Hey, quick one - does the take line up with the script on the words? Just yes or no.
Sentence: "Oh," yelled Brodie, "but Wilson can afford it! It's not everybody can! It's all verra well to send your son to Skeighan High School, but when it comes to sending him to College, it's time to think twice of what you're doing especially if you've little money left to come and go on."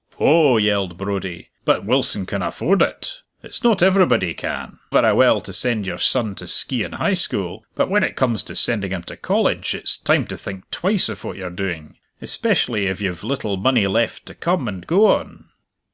no